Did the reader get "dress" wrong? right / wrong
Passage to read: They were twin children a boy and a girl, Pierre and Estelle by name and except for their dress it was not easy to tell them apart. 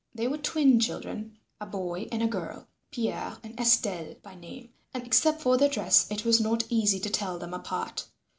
right